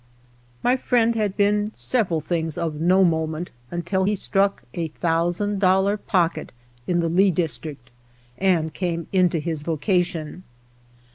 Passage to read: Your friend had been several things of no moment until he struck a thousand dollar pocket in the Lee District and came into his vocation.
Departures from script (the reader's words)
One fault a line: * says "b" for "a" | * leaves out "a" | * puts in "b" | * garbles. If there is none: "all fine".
* says "My" for "Your"